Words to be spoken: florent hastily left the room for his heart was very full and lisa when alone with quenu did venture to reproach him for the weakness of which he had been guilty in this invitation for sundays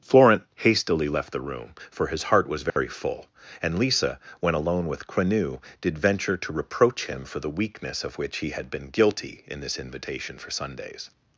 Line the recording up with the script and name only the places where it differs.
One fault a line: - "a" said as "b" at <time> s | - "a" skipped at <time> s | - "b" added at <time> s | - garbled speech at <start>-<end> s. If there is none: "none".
none